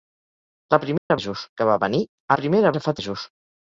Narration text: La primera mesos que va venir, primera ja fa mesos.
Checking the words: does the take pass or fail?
pass